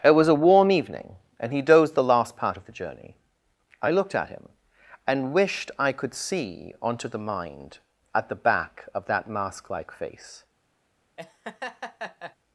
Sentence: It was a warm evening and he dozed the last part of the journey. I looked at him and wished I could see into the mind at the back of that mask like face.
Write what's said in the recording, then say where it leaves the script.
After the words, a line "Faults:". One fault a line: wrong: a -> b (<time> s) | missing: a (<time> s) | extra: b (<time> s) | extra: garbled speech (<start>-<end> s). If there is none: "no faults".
It was a warm evening and he dozed the last part of the journey. I looked at him and wished I could see onto the mind at the back of that mask like face.
Faults:
wrong: into -> onto (6.8 s)